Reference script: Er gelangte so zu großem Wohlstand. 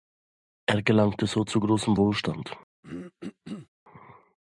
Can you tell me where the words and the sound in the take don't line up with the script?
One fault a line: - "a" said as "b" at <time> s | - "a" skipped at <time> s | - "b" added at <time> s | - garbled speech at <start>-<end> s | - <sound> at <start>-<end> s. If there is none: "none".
- throat clearing at 2.8-3.7 s